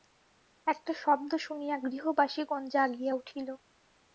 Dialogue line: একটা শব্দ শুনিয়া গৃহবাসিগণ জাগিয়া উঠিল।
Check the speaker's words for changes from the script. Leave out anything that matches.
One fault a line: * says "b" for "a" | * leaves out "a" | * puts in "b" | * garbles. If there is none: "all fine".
all fine